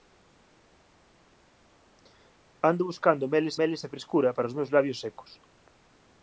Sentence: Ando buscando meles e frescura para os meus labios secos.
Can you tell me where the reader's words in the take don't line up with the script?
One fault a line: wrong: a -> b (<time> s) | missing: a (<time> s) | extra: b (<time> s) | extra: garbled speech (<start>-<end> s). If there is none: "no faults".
extra: meles (3.6 s)